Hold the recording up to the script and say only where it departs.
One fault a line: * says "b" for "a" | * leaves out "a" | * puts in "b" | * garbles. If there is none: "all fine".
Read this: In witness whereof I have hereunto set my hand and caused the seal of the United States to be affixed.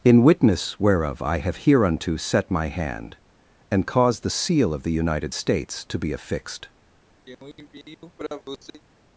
all fine